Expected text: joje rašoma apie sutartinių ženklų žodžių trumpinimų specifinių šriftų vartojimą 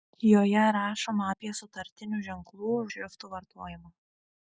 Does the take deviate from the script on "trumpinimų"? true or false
true